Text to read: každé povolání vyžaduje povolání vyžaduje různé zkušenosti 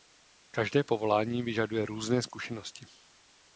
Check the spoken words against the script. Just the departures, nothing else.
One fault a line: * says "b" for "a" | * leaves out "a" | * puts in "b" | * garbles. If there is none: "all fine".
* leaves out "povolání vyžaduje"